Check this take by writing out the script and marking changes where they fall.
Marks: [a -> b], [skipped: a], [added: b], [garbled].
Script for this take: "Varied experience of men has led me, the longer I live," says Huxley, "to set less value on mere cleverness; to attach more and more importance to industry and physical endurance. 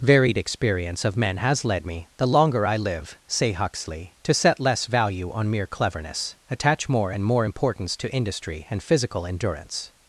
"Varied experience of men has led me, the longer I live," [says -> say] Huxley, "to set less value on mere cleverness; [skipped: to] attach more and more importance to industry and physical endurance.